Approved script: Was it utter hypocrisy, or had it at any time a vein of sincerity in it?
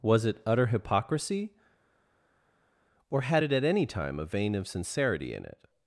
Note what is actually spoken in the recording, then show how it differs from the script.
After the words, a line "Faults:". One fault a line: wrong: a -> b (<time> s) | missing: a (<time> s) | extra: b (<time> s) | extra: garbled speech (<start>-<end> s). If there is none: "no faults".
Was it utter hypocrisy, or had it at any time a vein of sincerity in it?
Faults:
no faults